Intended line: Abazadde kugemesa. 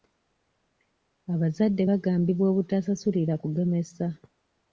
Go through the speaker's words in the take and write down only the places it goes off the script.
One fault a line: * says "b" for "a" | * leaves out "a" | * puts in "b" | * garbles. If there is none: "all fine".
* puts in "bagambibwa obutasasulira"